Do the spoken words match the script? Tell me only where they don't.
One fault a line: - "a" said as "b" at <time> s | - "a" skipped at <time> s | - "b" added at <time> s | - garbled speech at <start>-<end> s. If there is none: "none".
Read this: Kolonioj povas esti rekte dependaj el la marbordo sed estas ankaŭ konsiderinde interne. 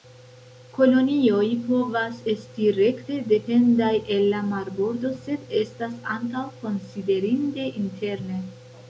none